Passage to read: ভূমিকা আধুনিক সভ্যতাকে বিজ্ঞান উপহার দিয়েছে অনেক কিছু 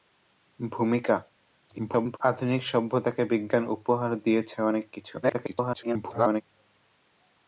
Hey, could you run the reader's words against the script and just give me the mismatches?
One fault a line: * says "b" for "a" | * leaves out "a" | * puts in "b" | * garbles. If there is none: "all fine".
* garbles
* garbles